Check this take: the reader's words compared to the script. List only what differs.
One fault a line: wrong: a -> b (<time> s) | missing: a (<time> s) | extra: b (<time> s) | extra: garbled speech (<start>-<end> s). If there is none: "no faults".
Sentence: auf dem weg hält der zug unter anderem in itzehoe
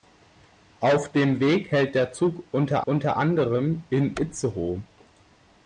extra: unter (2.8 s)